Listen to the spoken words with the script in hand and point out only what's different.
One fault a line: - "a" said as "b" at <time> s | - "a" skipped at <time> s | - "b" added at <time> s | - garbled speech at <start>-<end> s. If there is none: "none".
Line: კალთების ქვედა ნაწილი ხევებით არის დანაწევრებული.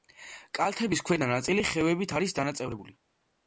none